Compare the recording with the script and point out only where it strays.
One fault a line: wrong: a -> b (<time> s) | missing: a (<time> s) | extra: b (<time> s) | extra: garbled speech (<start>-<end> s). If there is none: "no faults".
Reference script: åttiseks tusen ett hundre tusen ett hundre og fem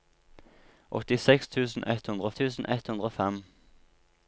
no faults